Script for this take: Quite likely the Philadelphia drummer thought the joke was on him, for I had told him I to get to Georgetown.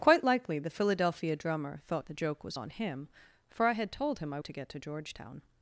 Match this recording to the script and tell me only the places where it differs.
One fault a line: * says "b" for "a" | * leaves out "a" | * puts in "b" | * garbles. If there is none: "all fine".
all fine